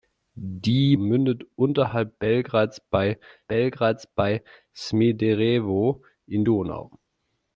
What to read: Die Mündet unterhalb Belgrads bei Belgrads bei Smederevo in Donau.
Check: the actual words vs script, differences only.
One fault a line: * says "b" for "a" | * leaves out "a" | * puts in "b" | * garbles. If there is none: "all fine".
all fine